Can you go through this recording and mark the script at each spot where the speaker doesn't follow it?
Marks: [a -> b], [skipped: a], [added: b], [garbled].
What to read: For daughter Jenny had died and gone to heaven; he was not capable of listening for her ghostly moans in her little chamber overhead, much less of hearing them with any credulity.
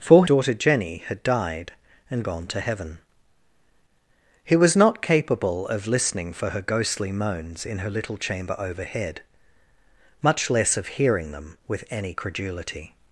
For daughter Jenny had died and gone to heaven; he was not capable of listening for her ghostly moans in her little chamber overhead, much less of hearing them with any credulity.